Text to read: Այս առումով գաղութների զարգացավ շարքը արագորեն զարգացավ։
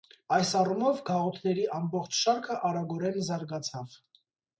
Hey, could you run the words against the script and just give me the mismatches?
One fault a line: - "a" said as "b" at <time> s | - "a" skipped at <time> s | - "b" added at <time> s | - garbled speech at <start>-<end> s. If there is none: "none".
- "զարգացավ" said as "ամբողջ" at 1.8 s